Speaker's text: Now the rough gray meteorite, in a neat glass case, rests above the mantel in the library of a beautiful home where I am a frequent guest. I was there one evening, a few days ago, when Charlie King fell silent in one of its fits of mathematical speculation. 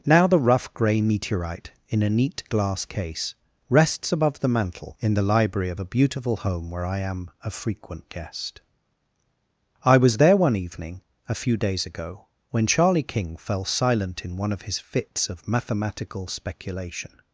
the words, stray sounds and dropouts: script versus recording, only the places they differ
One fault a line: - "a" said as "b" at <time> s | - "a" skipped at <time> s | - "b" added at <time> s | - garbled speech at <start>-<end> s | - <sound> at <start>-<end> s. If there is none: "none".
- "its" said as "his" at 14.6 s